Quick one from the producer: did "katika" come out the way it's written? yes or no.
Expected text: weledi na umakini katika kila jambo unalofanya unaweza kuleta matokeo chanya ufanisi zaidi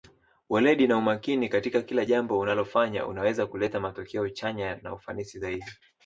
yes